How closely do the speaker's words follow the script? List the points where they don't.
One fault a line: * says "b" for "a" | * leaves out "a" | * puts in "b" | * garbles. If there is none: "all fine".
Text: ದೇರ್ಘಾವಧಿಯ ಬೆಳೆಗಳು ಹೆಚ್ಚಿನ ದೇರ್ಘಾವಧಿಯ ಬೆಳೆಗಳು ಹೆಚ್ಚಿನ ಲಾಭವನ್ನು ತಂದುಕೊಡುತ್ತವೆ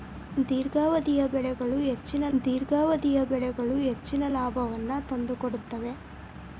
all fine